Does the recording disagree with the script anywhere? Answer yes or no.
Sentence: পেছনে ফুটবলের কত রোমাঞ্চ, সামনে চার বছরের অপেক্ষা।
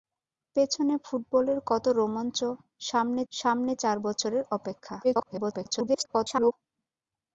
yes